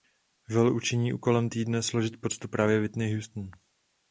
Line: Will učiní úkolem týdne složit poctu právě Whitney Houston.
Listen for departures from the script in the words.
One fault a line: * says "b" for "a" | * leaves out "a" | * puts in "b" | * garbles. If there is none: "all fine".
all fine